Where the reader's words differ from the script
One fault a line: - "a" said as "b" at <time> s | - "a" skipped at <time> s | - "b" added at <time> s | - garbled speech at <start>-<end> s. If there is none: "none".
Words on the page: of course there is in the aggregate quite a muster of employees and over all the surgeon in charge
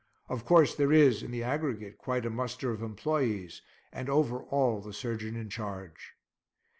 none